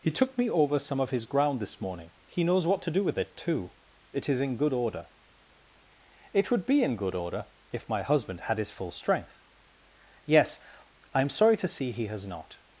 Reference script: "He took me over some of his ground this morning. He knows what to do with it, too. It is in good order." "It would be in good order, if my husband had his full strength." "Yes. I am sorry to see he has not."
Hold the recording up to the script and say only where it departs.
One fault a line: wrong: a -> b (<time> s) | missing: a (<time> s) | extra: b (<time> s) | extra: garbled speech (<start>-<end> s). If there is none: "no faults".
no faults